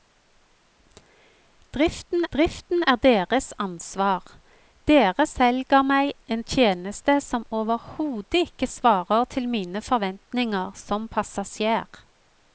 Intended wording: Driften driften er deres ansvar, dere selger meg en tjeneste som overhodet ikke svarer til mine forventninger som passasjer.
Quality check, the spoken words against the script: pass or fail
pass